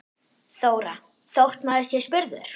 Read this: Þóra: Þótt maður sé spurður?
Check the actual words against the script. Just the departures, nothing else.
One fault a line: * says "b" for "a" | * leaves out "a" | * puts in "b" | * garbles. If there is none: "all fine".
all fine